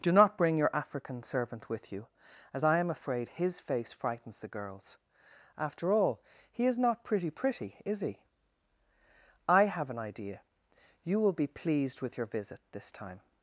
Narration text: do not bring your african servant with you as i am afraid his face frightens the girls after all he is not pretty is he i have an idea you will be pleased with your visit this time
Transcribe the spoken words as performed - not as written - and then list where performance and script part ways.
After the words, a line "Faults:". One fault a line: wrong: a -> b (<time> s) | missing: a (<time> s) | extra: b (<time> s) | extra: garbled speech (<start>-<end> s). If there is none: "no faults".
do not bring your african servant with you as i am afraid his face frightens the girls after all he is not pretty pretty is he i have an idea you will be pleased with your visit this time
Faults:
extra: pretty (7.3 s)